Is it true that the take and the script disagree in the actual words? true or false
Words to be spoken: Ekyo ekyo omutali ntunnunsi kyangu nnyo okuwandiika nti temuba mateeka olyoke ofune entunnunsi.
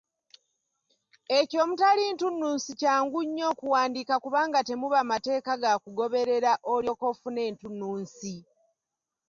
true